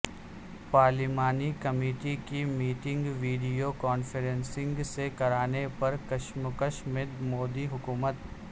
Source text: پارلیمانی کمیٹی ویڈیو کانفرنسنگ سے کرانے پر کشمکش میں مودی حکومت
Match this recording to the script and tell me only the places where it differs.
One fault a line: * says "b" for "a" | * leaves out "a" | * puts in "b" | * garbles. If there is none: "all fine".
* puts in "کی میٹنگ"